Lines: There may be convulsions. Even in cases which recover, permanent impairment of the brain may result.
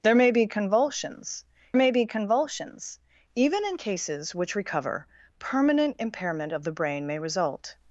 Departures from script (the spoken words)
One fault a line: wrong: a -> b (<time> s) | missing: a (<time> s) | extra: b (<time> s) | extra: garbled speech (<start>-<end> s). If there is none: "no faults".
extra: may be convulsions (1.8 s)